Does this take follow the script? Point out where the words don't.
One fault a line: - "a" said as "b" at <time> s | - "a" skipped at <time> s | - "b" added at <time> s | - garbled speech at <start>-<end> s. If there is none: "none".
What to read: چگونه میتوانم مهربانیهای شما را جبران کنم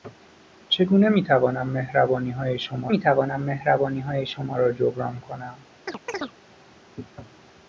- "میتوانم مهربانیهای شما" added at 2.9 s